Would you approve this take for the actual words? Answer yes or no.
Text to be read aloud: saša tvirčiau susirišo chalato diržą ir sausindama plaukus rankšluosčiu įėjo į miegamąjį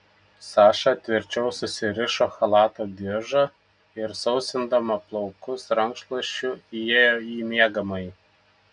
yes